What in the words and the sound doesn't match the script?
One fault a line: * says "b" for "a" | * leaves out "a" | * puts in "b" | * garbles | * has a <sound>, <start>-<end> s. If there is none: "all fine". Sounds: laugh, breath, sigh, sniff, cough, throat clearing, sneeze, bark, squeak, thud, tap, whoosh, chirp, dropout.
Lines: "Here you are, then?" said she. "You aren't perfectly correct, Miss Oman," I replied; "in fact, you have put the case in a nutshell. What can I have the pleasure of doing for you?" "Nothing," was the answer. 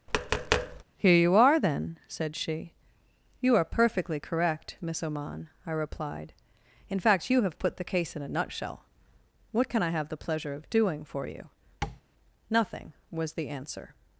* has a tap, 0.1-0.8 s
* says "are" for "aren't"
* has a tap, 11.8-12.0 s